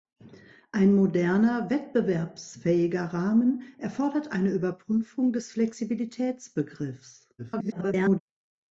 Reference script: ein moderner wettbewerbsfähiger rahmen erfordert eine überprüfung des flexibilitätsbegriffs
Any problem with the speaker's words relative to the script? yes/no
yes